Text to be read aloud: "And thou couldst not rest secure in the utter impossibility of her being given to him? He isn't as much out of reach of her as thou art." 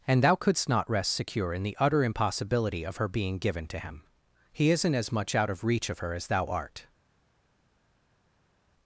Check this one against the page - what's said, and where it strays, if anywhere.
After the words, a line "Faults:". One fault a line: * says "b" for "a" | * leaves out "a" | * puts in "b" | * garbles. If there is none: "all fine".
"And thou couldst not rest secure in the utter impossibility of her being given to him? He isn't as much out of reach of her as thou art."
Faults:
all fine